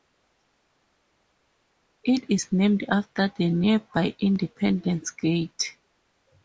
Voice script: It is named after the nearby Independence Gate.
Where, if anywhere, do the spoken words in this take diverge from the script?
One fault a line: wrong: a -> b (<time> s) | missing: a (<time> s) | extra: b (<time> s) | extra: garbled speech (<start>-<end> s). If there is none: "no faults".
no faults